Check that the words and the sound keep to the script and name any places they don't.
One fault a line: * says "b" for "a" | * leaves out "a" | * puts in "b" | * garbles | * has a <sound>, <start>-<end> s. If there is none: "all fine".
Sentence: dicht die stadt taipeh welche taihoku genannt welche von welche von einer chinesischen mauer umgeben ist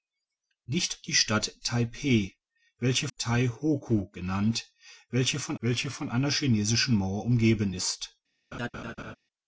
* has a laugh, 8.5-9.2 s